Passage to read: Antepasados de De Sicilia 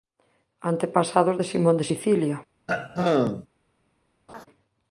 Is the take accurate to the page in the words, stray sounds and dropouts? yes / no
no